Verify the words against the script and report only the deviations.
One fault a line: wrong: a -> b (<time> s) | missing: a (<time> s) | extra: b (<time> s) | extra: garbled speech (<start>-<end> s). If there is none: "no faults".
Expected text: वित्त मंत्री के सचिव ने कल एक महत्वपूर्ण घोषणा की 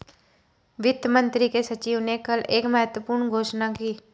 no faults